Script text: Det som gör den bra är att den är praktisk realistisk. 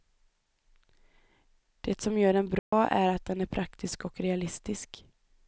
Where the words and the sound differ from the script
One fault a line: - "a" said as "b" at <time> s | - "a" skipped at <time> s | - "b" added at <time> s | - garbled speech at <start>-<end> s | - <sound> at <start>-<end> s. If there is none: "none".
- dropout at 2.6-2.7 s
- "och" added at 4.1 s